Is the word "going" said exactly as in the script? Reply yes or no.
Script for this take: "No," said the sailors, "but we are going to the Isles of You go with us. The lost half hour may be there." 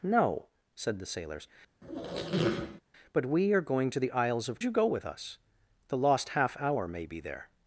yes